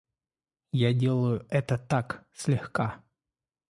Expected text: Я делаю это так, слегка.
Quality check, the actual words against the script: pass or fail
pass